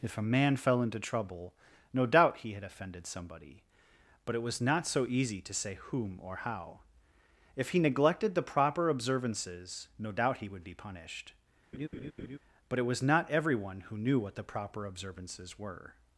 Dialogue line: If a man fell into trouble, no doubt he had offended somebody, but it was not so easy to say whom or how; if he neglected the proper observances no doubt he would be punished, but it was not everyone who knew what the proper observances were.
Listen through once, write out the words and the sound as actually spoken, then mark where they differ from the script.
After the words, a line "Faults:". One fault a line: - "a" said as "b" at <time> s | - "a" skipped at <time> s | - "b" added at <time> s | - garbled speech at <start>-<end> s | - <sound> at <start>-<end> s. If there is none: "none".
If a man fell into trouble, no doubt he had offended somebody, but it was not so easy to say whom or how; if he neglected the proper observances no doubt he would be punished, but it was not everyone who knew what the proper observances were.
Faults:
- laugh at 11.7-12.4 s